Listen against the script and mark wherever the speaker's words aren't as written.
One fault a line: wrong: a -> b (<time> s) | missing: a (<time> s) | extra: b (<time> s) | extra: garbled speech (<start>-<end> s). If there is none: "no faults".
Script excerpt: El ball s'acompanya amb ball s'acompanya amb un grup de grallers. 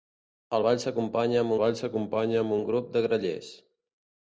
no faults